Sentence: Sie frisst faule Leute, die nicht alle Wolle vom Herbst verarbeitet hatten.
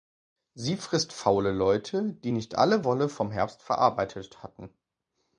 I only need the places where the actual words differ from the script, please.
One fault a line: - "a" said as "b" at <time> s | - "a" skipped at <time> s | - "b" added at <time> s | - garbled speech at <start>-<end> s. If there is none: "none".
none